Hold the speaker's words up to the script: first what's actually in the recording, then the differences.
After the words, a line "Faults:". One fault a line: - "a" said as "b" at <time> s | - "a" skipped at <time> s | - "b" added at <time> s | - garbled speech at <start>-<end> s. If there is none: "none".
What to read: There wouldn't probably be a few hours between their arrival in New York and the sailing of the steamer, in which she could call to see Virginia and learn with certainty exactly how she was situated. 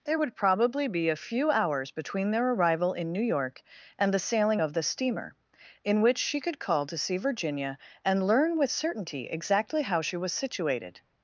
There would probably be a few hours between their arrival in New York and the sailing of the steamer, in which she could call to see Virginia and learn with certainty exactly how she was situated.
Faults:
- "wouldn't" said as "would" at 0.2 s